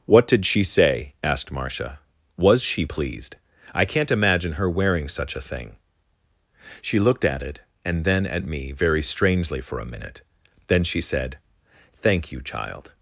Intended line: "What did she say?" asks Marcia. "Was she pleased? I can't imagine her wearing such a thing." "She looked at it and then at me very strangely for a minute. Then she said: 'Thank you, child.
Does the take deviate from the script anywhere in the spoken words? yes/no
yes